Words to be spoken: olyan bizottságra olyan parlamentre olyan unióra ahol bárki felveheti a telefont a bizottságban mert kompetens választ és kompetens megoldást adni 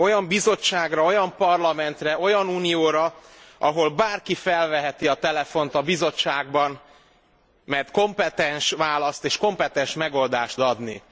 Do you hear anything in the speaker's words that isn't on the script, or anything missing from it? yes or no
no